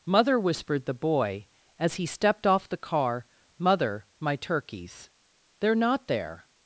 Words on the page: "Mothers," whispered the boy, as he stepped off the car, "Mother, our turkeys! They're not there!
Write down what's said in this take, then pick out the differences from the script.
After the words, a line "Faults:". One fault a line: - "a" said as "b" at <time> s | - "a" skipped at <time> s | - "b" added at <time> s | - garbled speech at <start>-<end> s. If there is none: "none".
"Mother," whispered the boy, as he stepped off the car, "Mother, my turkeys! They're not there!
Faults:
- "Mothers" said as "Mother" at 0.0 s
- "our" said as "my" at 4.2 s